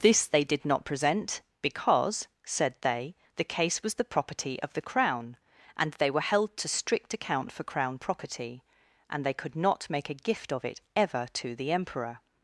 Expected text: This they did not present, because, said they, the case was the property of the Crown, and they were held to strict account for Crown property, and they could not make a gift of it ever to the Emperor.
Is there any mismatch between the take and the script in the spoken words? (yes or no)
no